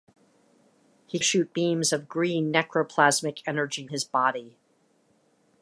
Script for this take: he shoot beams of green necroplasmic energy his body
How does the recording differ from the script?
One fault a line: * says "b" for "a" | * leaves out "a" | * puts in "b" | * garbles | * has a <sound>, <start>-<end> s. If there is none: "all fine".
all fine